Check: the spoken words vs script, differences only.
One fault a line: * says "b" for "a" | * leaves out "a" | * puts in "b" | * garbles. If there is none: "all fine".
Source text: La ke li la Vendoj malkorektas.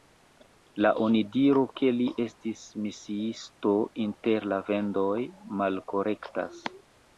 * puts in "onidiro"
* puts in "estis misiisto inter"